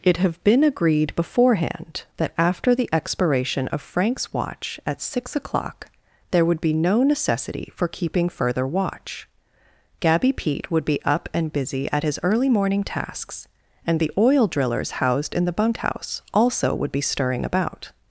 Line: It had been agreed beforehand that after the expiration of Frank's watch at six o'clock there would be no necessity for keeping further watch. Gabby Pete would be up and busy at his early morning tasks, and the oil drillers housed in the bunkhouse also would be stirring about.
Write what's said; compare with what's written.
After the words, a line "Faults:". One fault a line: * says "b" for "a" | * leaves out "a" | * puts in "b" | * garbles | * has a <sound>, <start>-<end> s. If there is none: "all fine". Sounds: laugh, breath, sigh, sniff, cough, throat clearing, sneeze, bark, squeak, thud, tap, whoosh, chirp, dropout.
It have been agreed beforehand that after the expiration of Frank's watch at six o'clock there would be no necessity for keeping further watch. Gabby Pete would be up and busy at his early morning tasks, and the oil drillers housed in the bunkhouse also would be stirring about.
Faults:
* says "have" for "had"